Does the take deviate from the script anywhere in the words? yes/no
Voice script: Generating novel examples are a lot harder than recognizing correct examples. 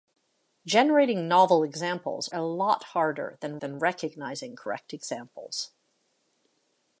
yes